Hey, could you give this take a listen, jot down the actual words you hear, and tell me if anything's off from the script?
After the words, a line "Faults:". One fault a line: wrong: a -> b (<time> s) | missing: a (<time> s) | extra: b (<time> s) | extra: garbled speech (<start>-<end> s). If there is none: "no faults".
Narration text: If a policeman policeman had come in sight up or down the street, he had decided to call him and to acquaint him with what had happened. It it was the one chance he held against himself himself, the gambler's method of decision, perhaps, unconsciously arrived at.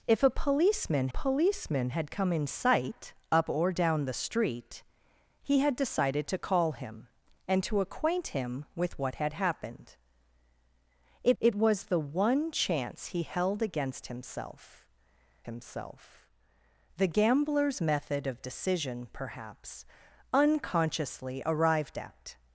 If a policeman policeman had come in sight up or down the street, he had decided to call him and to acquaint him with what had happened. It it was the one chance he held against himself himself, the gambler's method of decision, perhaps, unconsciously arrived at.
Faults:
no faults